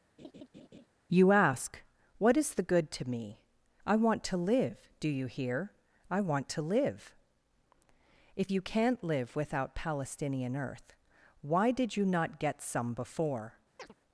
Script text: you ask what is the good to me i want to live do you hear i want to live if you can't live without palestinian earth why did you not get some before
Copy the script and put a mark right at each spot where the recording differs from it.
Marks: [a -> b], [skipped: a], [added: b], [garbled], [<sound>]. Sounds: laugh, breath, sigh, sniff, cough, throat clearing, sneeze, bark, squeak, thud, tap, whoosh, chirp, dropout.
[laugh] you ask what is the good to me i want to live do you hear i want to live if you can't live without palestinian earth why did you not get some before [chirp]